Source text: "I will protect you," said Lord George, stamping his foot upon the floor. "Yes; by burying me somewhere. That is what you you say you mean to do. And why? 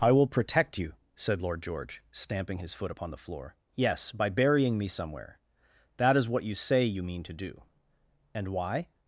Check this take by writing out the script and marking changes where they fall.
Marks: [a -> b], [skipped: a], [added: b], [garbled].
"I will protect you," said Lord George, stamping his foot upon the floor. "Yes; by burying me somewhere. That is what you [skipped: you] say you mean to do. And why?